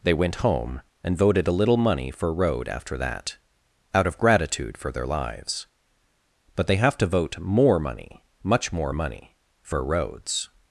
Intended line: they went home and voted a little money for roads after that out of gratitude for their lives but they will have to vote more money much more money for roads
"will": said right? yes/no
no